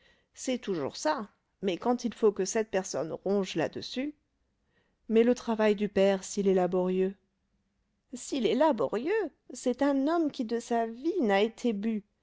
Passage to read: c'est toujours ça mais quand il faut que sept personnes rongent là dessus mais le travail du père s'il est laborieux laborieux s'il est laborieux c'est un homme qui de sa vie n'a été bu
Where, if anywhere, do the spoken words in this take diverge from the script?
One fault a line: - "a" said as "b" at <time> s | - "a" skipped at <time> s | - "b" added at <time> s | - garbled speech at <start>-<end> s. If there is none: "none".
- "laborieux" skipped at 7.2 s